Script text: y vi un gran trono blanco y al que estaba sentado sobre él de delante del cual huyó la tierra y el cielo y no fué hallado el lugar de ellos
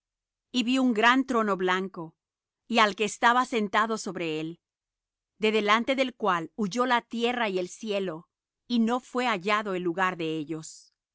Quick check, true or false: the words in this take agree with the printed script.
true